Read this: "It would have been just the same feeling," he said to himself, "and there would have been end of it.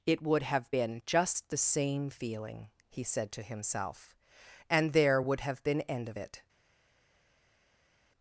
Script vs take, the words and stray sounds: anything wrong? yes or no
no